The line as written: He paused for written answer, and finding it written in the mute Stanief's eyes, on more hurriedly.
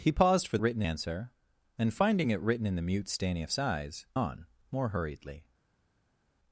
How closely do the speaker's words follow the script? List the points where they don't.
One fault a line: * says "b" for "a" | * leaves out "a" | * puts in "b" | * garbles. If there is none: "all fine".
all fine